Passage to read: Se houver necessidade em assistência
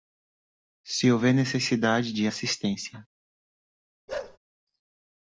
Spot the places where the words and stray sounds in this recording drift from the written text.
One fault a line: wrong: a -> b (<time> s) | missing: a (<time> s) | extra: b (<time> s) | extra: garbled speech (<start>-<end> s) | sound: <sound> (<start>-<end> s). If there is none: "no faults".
wrong: em -> de (2.1 s)
sound: bark (4.1-4.4 s)